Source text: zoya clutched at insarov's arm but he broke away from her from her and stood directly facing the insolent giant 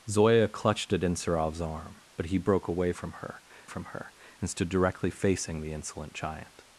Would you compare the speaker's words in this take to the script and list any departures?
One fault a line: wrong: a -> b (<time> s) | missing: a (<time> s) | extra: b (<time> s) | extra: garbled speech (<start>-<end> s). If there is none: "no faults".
no faults